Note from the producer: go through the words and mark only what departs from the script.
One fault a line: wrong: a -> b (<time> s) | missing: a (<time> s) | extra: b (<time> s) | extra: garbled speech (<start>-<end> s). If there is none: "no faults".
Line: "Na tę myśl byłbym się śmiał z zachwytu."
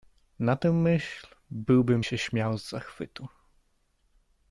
no faults